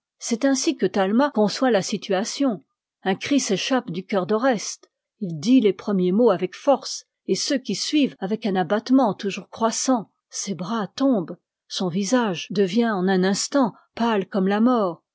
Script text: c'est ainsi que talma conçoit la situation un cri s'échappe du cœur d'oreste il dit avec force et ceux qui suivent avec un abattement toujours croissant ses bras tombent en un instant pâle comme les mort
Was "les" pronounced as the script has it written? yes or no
no